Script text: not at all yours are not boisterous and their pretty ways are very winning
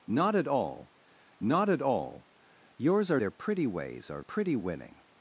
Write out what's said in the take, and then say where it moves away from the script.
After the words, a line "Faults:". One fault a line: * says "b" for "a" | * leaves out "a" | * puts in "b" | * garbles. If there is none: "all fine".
not at all not at all yours are their pretty ways are pretty winning
Faults:
* says "not at all yours are" for "yours are not boisterous and"
* says "pretty" for "very"